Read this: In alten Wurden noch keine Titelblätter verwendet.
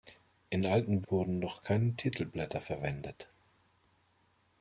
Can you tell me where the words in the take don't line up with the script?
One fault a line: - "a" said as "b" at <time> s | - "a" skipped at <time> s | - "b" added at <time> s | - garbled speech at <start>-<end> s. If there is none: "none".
none